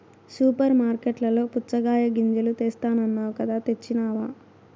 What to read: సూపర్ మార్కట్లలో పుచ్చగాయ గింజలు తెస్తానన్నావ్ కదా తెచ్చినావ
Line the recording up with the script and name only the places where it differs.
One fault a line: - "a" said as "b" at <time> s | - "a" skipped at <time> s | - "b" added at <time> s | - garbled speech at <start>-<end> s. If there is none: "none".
none